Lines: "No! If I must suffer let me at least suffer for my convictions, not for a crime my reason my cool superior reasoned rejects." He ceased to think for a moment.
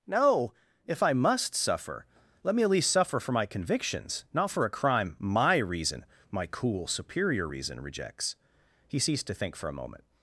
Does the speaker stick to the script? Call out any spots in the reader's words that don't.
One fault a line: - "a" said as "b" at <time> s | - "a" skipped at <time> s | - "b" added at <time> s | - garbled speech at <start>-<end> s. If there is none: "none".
- "reasoned" said as "reason" at 7.4 s